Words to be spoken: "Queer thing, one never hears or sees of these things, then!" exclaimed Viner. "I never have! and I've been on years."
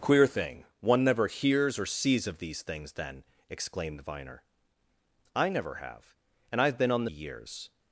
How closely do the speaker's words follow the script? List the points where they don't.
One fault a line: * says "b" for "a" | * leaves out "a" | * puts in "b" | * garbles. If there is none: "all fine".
all fine